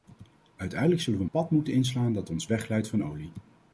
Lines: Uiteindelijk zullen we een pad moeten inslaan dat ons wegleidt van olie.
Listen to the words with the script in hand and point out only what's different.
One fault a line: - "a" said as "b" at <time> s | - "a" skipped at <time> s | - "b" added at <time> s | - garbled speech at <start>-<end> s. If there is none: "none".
- "een" skipped at 1.2 s